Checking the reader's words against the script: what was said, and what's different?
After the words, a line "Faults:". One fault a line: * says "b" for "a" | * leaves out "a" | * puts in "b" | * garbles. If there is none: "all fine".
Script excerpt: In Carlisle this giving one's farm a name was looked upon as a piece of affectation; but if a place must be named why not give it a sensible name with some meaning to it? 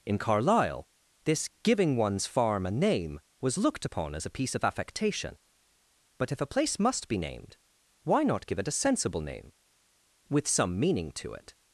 In Carlisle this giving one's farm a name was looked upon as a piece of affectation; but if a place must be named why not give it a sensible name with some meaning to it?
Faults:
all fine